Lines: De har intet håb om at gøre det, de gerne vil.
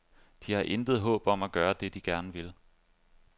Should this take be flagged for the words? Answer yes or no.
no